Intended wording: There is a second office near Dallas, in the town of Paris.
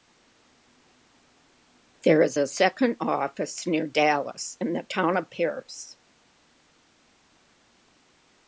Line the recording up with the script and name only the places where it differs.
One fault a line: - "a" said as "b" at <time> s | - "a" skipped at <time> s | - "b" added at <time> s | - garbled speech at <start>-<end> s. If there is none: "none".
none